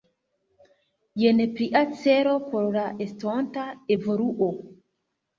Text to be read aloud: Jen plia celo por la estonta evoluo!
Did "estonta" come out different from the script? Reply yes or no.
no